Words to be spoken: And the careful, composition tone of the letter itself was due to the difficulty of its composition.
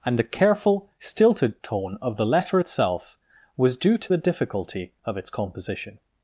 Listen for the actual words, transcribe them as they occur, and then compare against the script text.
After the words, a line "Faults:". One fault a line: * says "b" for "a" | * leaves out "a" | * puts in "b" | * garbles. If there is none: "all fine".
And the careful, stilted tone of the letter itself was due to the difficulty of its composition.
Faults:
* says "stilted" for "composition"